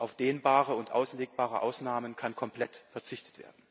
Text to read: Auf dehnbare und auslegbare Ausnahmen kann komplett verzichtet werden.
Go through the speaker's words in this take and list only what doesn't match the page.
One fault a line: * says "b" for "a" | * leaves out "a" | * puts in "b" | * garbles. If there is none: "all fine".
all fine